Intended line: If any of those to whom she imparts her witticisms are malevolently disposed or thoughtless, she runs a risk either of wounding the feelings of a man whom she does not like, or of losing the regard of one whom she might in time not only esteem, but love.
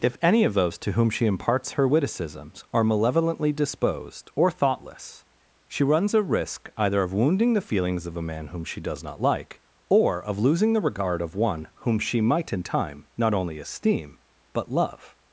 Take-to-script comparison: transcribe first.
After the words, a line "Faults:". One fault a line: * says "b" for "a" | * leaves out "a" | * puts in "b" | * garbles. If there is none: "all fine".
If any of those to whom she imparts her witticisms are malevolently disposed or thoughtless, she runs a risk either of wounding the feelings of a man whom she does not like, or of losing the regard of one whom she might in time not only esteem, but love.
Faults:
all fine